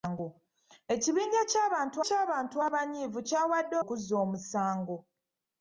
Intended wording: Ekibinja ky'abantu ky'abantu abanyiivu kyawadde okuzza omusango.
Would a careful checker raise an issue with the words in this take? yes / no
no